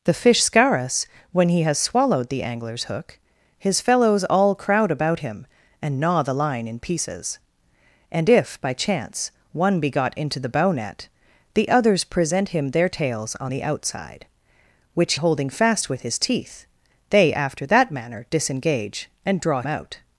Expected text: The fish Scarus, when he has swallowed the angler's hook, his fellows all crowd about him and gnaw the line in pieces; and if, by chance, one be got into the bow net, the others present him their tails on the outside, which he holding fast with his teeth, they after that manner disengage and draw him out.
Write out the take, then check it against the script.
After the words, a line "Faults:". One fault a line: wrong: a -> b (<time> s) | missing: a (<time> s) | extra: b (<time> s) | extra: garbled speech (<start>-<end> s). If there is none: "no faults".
The fish Scarus, when he has swallowed the angler's hook, his fellows all crowd about him and gnaw the line in pieces; and if, by chance, one be got into the bow net, the others present him their tails on the outside, which holding fast with his teeth, they after that manner disengage and draw out.
Faults:
missing: he (15.1 s)
missing: him (19.6 s)